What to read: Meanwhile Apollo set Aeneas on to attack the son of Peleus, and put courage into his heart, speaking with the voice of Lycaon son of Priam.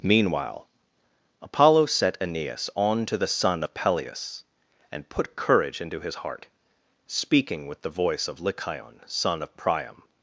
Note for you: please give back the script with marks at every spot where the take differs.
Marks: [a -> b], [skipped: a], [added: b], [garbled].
Meanwhile Apollo set Aeneas on to [skipped: attack] the son of Peleus, and put courage into his heart, speaking with the voice of Lycaon son of Priam.